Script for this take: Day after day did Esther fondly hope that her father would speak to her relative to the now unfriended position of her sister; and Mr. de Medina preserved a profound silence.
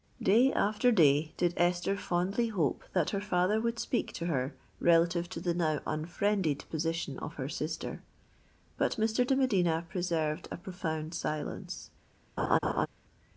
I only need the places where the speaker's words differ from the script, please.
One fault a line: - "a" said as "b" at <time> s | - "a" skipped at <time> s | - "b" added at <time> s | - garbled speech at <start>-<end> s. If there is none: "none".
- "and" said as "but" at 8.8 s